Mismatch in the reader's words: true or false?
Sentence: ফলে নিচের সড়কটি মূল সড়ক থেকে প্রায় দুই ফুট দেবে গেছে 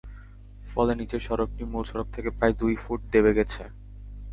false